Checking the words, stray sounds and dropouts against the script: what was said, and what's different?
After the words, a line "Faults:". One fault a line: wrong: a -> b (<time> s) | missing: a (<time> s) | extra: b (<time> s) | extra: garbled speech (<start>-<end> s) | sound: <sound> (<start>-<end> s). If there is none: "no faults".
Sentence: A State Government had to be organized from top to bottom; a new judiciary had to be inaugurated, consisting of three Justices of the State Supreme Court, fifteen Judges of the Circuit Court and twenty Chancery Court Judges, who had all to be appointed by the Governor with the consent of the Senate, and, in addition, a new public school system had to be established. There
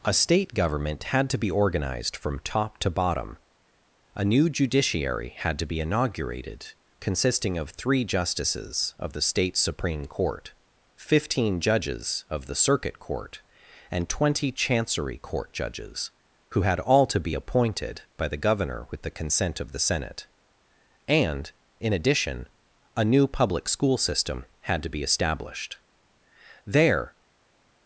A State Government had to be organized from top to bottom; a new judiciary had to be inaugurated, consisting of three Justices of the State Supreme Court, fifteen Judges of the Circuit Court and twenty Chancery Court Judges, who had all to be appointed by the Governor with the consent of the Senate, and, in addition, a new public school system had to be established. There
Faults:
no faults